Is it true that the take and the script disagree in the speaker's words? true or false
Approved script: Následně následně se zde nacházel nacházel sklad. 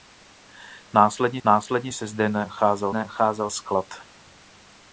false